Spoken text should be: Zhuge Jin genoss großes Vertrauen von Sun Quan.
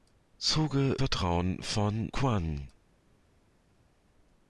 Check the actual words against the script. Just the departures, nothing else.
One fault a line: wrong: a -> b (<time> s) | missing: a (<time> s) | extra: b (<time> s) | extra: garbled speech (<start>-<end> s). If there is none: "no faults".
missing: Jin genoss großes (1.0 s)
missing: Sun (2.1 s)